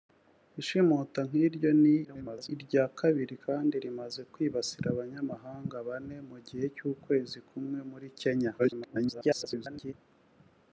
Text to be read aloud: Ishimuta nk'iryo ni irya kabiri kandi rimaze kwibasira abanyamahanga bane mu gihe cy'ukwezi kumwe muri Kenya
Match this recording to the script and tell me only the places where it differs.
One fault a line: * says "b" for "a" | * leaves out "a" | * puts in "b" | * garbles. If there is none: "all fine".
* garbles
* garbles